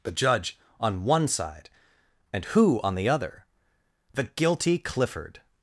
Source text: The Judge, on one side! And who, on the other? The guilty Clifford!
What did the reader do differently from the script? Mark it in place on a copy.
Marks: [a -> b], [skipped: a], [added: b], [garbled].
The Judge, on one side! And who, on the other? The guilty Clifford!